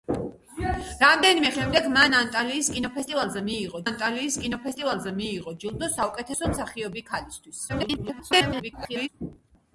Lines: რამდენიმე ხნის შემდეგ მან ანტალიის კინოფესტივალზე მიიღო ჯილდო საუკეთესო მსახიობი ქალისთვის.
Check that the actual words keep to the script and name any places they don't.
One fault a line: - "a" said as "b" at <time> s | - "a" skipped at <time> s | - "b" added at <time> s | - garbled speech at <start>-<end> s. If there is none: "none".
- "ხნის" skipped at 1.5 s
- "ანტალიის კინოფესტივალზე მიიღო" added at 3.8 s
- garbled speech at 7.7-9.1 s